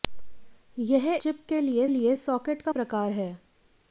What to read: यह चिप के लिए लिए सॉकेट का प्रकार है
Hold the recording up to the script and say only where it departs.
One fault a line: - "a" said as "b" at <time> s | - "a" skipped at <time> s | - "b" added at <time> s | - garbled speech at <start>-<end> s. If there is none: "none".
none